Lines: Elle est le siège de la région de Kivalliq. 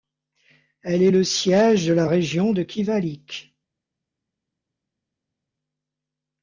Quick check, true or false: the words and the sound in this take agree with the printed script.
true